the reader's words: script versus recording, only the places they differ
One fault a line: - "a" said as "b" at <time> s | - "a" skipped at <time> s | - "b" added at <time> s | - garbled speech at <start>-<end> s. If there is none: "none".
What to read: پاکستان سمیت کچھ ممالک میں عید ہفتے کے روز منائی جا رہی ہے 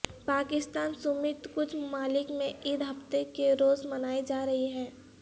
none